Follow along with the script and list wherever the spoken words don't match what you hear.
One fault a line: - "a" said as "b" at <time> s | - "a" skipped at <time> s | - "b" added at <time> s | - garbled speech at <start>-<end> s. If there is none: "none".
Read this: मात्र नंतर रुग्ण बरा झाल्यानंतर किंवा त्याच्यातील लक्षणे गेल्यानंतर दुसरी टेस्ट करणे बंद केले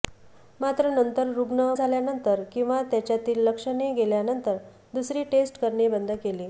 - "बरा" skipped at 1.7 s